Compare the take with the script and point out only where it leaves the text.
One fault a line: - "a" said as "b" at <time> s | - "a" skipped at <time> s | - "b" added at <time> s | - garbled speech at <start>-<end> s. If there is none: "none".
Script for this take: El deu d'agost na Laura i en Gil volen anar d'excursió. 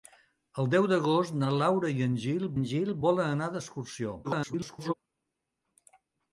- "en Gil" added at 2.6 s
- garbled speech at 4.2-4.9 s